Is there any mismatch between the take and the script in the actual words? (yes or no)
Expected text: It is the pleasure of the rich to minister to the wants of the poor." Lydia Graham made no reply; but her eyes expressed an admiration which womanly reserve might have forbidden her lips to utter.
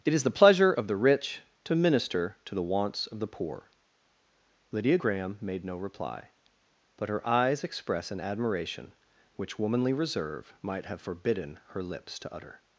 yes